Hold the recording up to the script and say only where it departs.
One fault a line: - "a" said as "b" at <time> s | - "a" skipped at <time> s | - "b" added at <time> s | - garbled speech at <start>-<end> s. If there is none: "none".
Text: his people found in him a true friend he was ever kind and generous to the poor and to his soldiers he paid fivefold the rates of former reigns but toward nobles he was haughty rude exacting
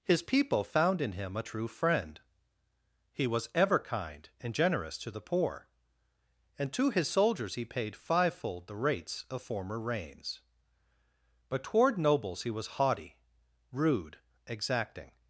none